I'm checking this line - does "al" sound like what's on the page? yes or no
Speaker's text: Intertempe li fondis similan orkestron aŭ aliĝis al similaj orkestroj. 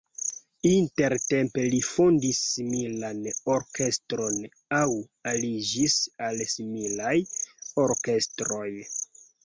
yes